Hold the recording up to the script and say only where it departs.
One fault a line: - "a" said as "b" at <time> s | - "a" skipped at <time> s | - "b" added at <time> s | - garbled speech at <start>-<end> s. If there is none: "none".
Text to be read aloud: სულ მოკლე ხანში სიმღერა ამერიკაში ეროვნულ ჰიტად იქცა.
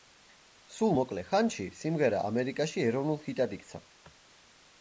none